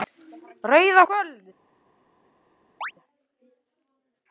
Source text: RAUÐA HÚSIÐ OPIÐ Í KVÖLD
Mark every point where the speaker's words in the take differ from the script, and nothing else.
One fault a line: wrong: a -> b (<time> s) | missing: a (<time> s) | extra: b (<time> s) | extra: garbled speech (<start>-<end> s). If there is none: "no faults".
missing: HÚSIÐ OPIÐ (1.0 s)